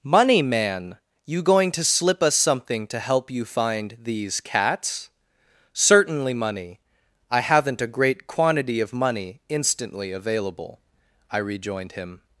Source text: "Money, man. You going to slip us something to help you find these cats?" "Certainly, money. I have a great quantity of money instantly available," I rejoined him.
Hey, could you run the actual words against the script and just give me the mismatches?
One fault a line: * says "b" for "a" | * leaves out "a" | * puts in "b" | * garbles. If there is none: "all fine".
* says "haven't" for "have"